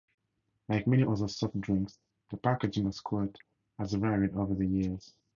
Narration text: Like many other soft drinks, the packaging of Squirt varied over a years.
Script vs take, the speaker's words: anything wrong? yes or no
yes